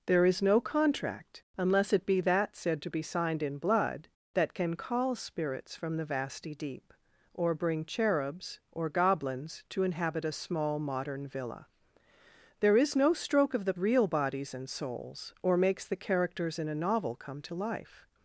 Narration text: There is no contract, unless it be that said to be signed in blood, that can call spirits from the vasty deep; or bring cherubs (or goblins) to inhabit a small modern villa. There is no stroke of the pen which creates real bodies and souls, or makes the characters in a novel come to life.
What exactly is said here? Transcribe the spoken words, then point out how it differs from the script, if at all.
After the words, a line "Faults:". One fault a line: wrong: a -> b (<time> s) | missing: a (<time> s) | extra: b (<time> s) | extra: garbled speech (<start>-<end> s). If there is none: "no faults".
There is no contract, unless it be that said to be signed in blood, that can call spirits from the vasty deep; or bring cherubs (or goblins) to inhabit a small modern villa. There is no stroke of the real bodies and souls, or makes the characters in a novel come to life.
Faults:
missing: pen which creates (13.7 s)